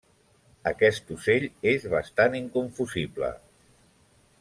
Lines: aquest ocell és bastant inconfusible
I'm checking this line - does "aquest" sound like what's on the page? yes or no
yes